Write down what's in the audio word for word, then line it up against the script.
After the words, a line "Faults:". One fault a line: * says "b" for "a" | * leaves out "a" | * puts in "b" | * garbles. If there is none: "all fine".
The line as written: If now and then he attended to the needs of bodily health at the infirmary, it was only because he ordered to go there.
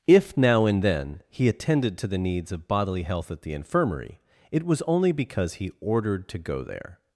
If now and then he attended to the needs of bodily health at the infirmary, it was only because he ordered to go there.
Faults:
all fine